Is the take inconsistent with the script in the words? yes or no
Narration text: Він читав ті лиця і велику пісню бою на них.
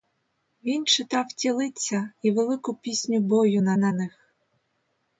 yes